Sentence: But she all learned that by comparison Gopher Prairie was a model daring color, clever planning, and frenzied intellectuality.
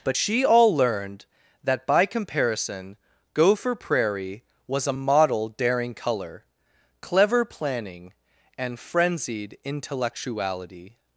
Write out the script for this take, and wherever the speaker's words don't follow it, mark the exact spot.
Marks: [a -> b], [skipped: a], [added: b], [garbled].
But she all learned that by comparison Gopher Prairie was a model daring color, clever planning, and frenzied intellectuality.